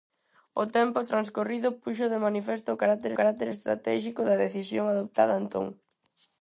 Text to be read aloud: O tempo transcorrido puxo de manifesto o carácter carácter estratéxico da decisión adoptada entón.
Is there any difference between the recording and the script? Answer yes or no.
no